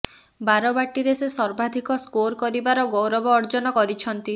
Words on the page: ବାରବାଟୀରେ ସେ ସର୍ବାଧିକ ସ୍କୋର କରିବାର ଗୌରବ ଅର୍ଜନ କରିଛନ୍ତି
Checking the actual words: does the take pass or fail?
pass